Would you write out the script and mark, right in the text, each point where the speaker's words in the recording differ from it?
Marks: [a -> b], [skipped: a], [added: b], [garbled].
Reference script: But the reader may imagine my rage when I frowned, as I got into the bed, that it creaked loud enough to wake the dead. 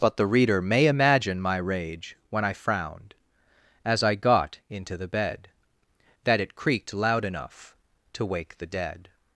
But the reader may imagine my rage when I frowned, as I got into the bed, that it creaked loud enough to wake the dead.